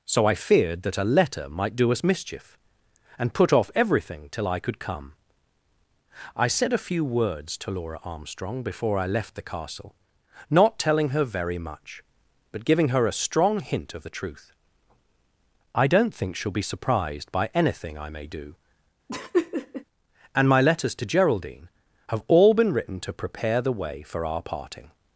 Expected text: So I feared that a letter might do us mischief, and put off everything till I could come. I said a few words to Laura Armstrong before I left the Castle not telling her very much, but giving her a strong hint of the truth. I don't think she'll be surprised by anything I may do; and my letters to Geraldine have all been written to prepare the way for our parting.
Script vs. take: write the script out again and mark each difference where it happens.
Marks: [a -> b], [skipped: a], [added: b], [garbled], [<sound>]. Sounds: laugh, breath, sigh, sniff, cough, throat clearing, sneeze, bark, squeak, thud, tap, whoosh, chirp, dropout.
So I feared that a letter might do us mischief, and put off everything till I could come. I said a few words to Laura Armstrong before I left the Castle not telling her very much, but giving her a strong hint of the truth. I don't think she'll be surprised by anything I may do; [laugh] and my letters to Geraldine have all been written to prepare the way for our parting.